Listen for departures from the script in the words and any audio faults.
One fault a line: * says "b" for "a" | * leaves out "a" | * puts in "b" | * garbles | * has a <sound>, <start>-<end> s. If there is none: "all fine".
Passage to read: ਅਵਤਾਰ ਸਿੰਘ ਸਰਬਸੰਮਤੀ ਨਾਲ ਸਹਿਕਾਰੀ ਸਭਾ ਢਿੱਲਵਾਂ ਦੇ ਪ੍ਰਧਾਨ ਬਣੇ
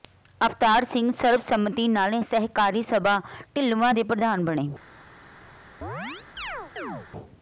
* has a chirp, 5.8-7.1 s